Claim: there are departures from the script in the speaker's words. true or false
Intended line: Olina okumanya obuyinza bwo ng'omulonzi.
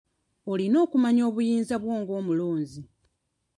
false